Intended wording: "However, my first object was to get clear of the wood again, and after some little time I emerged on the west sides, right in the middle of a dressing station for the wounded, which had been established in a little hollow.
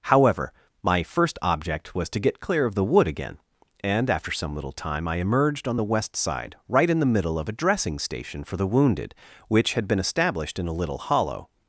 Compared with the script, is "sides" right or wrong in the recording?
wrong